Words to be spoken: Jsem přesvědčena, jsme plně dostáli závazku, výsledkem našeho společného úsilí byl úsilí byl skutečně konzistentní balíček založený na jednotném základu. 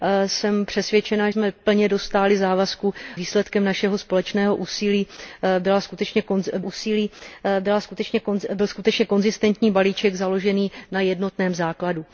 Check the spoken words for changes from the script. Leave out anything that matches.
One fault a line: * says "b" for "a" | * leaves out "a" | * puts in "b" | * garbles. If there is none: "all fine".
all fine